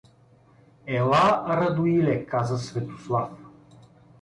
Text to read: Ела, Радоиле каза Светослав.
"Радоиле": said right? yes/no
yes